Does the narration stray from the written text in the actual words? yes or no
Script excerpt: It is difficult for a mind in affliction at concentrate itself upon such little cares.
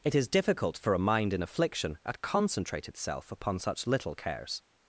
no